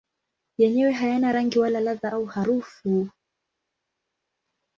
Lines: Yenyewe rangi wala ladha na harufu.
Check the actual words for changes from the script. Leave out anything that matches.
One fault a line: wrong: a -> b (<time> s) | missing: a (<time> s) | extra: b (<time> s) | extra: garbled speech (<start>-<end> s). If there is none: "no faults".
extra: hayana (0.9 s)
wrong: na -> au (2.1 s)